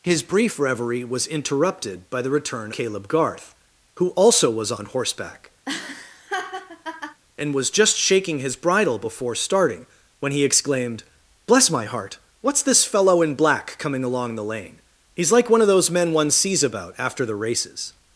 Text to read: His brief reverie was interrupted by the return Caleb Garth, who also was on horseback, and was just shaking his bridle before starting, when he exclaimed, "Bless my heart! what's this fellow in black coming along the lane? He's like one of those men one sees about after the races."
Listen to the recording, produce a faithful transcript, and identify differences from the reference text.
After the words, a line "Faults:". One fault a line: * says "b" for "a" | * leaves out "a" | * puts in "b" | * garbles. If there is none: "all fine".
His brief reverie was interrupted by the return Caleb Garth, who also was on horseback, and was just shaking his bridle before starting, when he exclaimed, "Bless my heart! what's this fellow in black coming along the lane? He's like one of those men one sees about after the races."
Faults:
all fine